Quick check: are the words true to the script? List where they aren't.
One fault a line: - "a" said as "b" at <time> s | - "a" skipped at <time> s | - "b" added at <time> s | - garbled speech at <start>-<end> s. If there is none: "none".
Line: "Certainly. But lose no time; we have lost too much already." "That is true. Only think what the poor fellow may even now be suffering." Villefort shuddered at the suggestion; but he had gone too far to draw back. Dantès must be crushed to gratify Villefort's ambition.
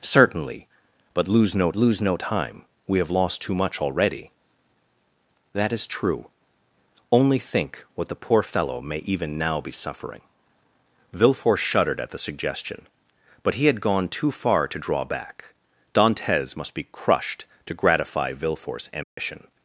- "lose no" added at 1.7 s